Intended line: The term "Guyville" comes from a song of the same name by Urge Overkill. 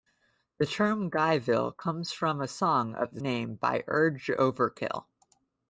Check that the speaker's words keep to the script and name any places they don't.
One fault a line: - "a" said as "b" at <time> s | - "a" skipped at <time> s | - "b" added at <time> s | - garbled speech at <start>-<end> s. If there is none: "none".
- "same" skipped at 3.2 s